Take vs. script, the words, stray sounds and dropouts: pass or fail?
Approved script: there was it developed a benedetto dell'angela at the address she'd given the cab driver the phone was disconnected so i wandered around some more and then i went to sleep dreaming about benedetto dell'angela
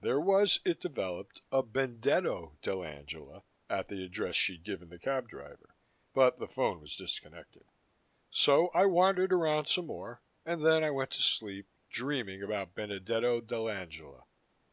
fail